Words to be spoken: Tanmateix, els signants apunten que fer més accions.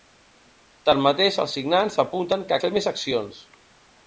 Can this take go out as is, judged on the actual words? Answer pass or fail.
pass